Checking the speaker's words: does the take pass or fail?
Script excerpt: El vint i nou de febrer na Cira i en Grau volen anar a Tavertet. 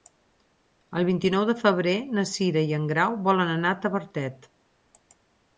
pass